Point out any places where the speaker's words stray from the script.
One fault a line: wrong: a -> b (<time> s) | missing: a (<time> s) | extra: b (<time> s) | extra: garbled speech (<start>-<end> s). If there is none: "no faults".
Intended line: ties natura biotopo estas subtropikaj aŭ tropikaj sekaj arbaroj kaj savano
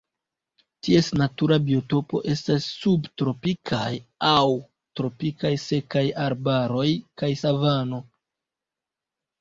no faults